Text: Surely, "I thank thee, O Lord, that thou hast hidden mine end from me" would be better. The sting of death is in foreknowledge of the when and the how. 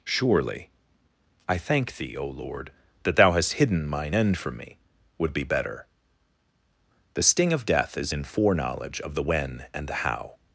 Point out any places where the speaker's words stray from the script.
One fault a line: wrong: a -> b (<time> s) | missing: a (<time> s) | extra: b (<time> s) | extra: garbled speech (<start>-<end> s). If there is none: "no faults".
no faults